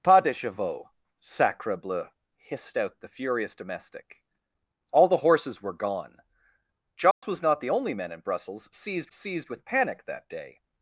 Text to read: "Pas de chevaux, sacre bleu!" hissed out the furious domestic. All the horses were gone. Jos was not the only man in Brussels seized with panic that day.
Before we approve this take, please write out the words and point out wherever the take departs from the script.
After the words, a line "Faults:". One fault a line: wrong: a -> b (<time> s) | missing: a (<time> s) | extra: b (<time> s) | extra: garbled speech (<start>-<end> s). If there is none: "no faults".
"Pas de chevaux, sacre bleu!" hissed out the furious domestic. All the horses were gone. Jos was not the only man in Brussels seized seized with panic that day.
Faults:
extra: seized (9.1 s)